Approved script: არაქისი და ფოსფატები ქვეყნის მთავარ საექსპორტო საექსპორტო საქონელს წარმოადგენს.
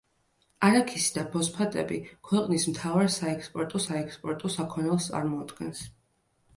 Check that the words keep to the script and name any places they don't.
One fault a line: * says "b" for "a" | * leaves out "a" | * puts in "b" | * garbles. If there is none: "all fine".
all fine